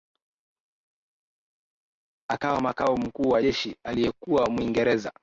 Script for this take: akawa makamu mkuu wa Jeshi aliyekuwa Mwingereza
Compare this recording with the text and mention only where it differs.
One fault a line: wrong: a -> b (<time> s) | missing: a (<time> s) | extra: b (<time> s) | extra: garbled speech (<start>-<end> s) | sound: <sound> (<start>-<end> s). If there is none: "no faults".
no faults